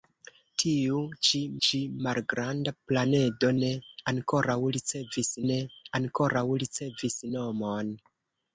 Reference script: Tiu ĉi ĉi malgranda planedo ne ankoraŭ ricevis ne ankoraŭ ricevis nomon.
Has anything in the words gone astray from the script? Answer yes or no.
no